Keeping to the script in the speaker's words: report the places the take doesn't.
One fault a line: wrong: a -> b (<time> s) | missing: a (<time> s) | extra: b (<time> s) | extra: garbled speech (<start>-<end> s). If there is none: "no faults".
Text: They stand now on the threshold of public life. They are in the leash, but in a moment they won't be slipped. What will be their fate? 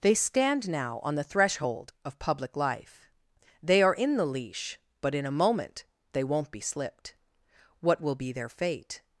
no faults